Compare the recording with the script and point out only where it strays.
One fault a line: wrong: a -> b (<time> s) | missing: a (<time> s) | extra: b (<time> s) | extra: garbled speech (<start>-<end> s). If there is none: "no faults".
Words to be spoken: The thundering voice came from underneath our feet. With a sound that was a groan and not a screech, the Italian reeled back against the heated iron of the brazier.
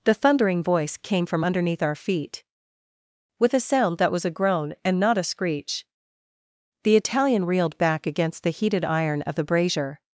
no faults